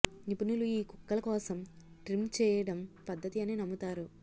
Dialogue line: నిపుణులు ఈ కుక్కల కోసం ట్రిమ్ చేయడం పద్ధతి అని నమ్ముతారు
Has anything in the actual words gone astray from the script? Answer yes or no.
no